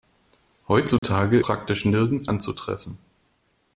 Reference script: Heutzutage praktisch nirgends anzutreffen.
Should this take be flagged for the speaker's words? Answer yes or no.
no